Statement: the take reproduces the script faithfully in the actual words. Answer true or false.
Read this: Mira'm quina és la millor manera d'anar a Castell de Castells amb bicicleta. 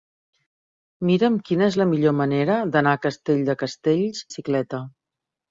false